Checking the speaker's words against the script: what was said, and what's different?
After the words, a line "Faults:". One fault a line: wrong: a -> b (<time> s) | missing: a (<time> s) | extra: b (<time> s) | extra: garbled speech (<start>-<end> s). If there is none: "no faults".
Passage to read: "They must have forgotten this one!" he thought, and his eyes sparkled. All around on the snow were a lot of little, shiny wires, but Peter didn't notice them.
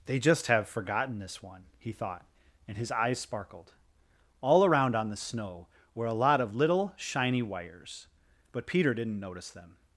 "They just have forgotten this one!" he thought, and his eyes sparkled. All around on the snow were a lot of little, shiny wires, but Peter didn't notice them.
Faults:
wrong: must -> just (0.2 s)